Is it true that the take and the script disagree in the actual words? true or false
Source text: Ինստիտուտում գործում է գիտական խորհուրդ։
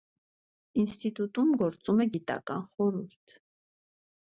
false